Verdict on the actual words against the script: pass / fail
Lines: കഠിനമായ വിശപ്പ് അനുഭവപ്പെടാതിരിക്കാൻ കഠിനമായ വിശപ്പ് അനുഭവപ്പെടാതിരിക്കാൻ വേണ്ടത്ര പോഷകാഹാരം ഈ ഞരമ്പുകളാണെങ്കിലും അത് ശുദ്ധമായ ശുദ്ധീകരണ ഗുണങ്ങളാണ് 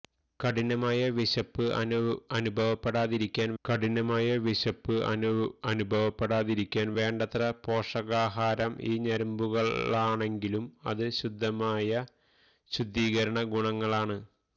pass